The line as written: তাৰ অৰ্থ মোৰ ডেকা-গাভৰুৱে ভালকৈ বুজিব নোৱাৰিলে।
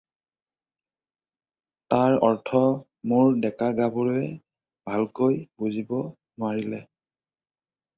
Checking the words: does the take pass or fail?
pass